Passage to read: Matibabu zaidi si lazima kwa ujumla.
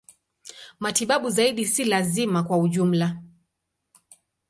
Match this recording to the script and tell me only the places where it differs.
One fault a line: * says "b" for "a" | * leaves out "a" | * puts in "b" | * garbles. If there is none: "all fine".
all fine